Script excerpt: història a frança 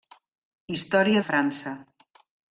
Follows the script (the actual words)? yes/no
yes